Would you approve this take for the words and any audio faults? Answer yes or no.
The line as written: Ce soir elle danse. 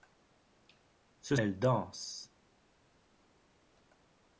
no